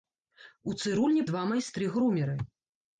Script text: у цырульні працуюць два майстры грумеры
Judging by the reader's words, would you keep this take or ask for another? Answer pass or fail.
fail